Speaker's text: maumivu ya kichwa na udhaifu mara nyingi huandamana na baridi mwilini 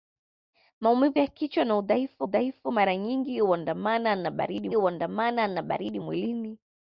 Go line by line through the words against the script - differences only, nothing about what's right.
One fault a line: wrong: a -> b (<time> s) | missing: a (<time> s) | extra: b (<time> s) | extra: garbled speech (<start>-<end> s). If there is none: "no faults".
extra: udhaifu (2.2 s)
extra: huandamana na baridi (4.7 s)